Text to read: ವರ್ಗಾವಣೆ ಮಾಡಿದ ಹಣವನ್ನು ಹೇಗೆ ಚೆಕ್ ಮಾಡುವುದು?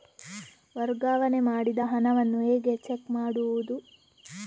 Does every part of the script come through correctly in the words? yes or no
yes